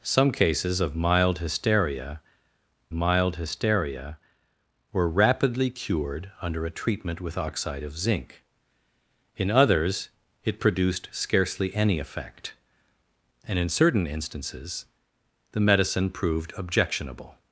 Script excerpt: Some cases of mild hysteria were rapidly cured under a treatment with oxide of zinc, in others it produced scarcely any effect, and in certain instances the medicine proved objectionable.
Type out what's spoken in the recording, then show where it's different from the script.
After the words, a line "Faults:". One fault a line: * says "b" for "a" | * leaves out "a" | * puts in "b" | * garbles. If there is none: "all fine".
Some cases of mild hysteria mild hysteria were rapidly cured under a treatment with oxide of zinc, in others it produced scarcely any effect, and in certain instances the medicine proved objectionable.
Faults:
* puts in "mild hysteria"